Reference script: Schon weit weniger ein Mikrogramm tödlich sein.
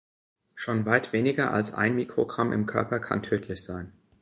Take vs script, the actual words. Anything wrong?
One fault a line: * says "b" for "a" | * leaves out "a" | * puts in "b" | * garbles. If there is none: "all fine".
* puts in "als"
* puts in "im Körper kann"